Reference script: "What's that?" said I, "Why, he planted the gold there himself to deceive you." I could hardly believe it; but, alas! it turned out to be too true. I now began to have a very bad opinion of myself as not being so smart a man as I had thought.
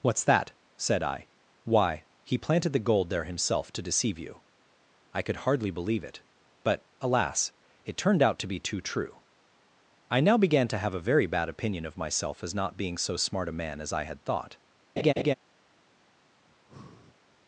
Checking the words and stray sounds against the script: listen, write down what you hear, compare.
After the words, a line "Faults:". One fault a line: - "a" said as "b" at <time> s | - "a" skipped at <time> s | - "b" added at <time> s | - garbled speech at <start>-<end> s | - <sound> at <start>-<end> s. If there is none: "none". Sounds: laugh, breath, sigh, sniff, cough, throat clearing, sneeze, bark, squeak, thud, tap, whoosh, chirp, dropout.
"What's that?" said I, "Why, he planted the gold there himself to deceive you." I could hardly believe it; but, alas! it turned out to be too true. I now began to have a very bad opinion of myself as not being so smart a man as I had thought.
Faults:
- laugh at 15.0-15.3 s
- breath at 16.5-17.2 s